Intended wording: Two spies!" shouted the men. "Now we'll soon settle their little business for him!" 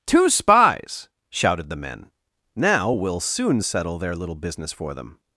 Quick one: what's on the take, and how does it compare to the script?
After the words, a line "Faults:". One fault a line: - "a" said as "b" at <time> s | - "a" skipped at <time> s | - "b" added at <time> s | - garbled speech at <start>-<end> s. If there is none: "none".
Two spies!" shouted the men. "Now we'll soon settle their little business for them!"
Faults:
- "him" said as "them" at 4.9 s